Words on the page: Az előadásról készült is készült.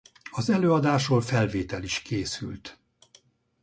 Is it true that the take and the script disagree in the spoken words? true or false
true